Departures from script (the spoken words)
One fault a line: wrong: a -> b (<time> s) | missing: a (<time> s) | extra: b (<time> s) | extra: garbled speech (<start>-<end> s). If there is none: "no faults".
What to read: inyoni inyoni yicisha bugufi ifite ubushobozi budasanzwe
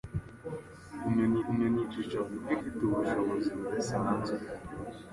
no faults